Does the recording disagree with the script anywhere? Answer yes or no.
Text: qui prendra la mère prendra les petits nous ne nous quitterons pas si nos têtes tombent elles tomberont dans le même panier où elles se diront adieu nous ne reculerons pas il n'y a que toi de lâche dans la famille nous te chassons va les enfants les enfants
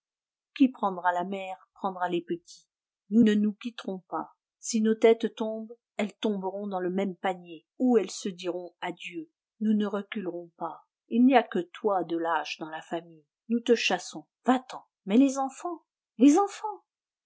yes